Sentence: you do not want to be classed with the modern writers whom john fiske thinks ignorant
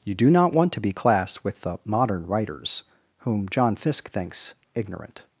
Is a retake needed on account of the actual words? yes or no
no